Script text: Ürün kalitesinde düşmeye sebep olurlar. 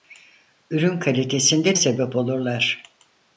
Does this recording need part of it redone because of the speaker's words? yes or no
yes